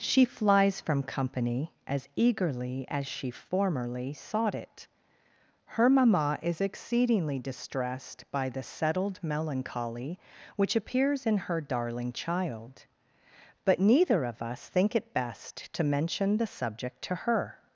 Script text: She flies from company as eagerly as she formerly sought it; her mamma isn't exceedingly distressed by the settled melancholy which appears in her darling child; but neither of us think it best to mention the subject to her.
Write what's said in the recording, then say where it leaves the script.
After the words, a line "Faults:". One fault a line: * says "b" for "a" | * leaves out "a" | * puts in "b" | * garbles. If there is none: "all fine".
She flies from company as eagerly as she formerly sought it; her mamma is exceedingly distressed by the settled melancholy which appears in her darling child; but neither of us think it best to mention the subject to her.
Faults:
* says "is" for "isn't"